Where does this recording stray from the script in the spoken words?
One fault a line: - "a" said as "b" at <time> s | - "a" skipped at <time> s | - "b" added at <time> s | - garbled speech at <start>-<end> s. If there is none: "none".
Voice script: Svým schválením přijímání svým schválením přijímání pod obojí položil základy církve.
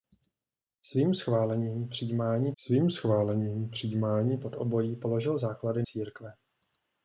none